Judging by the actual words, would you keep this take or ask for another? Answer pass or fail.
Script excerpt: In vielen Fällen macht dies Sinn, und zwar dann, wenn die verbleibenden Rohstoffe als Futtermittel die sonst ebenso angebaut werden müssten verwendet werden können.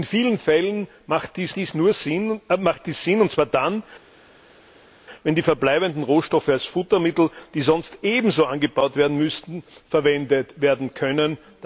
fail